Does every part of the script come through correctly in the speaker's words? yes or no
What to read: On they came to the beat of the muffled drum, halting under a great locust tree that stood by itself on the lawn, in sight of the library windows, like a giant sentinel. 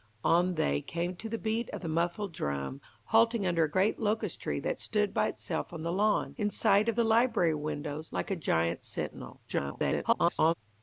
no